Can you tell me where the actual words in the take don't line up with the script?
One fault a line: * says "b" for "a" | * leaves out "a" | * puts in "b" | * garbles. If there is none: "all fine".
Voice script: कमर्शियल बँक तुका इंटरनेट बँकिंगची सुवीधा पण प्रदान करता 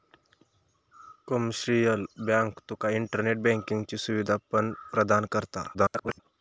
* garbles